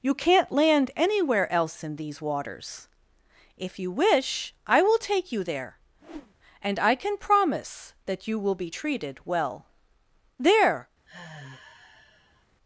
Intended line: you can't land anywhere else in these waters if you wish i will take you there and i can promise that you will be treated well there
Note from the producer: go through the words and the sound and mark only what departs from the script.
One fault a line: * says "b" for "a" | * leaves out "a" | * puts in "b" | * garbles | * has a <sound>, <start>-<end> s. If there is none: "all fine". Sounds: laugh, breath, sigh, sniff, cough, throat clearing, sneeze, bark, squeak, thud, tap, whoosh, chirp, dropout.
* has a whoosh, 6.0-6.4 s
* has a sigh, 11.1-12.5 s